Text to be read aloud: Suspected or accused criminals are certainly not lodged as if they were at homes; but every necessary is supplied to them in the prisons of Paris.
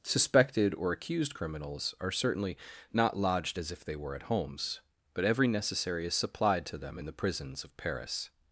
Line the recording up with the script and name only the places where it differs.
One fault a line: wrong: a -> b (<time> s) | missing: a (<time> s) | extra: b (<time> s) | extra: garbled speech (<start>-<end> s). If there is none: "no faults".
no faults